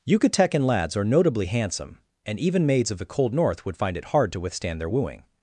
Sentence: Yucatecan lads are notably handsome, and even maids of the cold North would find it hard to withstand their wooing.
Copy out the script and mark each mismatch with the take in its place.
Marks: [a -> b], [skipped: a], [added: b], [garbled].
Yucatecan lads are notably handsome, and even maids of the cold North would find it hard to withstand their wooing.